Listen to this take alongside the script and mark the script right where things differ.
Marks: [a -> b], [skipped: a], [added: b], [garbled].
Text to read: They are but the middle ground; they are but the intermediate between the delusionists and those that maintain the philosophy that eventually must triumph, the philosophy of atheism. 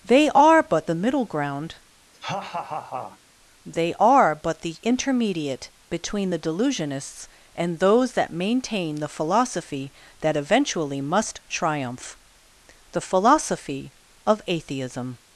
They are but the middle ground; they are but the intermediate between the delusionists and those that maintain the philosophy that eventually must triumph, the philosophy of atheism.